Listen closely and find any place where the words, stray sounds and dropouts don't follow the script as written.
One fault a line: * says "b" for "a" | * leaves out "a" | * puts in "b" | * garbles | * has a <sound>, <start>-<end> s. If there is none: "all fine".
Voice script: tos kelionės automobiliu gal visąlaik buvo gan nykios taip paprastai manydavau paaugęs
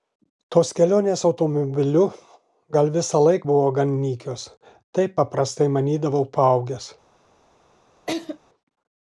* has a laugh, 8.1-8.4 s